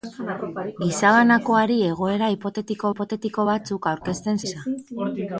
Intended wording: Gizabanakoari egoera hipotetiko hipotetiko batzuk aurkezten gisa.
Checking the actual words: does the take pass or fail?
pass